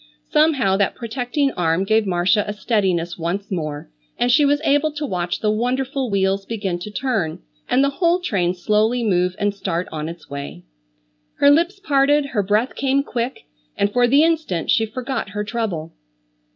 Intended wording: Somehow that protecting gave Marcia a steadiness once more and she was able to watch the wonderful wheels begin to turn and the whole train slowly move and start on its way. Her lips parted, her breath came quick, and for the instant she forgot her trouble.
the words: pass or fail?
fail